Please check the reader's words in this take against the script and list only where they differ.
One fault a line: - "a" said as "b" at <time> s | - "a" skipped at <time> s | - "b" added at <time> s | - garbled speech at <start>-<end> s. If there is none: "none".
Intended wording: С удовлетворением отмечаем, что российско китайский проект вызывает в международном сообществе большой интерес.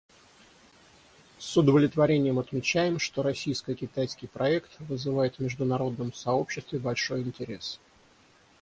none